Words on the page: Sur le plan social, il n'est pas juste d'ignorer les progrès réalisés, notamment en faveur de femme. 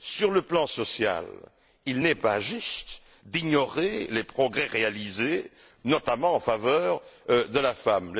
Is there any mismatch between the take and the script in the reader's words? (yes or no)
yes